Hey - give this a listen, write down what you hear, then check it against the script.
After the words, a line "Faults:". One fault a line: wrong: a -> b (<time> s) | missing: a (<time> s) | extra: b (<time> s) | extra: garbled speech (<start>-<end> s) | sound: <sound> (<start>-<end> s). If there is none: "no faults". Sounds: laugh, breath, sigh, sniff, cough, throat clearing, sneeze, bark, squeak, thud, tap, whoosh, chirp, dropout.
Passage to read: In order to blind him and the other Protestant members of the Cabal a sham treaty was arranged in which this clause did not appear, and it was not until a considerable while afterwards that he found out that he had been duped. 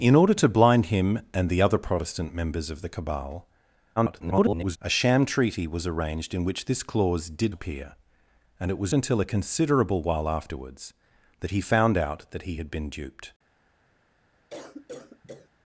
In order to blind him and the other Protestant members of the Cabal [garbled] a sham treaty was arranged in which this clause did appear, and it was until a considerable while afterwards that he found out that he had been duped.
Faults:
extra: garbled speech (4.0-4.8 s)
missing: not (7.5 s)
missing: not (8.9 s)
sound: cough (14.5-15.5 s)